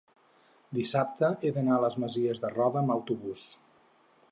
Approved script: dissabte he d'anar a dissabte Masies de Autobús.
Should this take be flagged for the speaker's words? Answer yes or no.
yes